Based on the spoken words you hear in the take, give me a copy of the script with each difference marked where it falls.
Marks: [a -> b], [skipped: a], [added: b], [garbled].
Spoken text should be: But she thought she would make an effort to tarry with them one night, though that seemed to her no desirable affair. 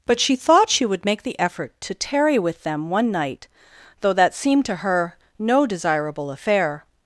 But she thought she would make [an -> the] effort to tarry with them one night, though that seemed to her no desirable affair.